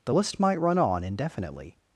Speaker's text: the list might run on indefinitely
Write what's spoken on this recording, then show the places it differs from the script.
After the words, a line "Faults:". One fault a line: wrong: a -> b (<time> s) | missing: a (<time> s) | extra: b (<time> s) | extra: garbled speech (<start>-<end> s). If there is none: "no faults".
the list might run on indefinitely
Faults:
no faults